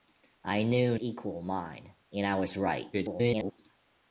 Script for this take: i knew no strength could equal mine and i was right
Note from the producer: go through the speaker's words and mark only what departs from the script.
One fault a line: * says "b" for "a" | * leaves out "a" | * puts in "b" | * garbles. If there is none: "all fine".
* leaves out "no strength could"
* garbles